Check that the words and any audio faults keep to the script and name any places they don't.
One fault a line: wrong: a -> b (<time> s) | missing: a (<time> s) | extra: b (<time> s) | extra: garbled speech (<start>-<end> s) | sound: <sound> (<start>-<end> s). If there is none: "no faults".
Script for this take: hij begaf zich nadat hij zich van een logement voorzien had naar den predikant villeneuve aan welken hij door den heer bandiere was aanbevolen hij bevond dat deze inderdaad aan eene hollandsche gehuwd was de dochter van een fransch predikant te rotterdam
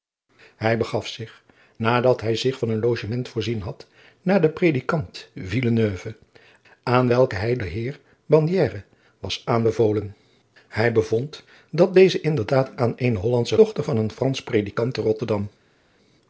missing: door (7.6 s)
missing: gehuwd was de (13.6 s)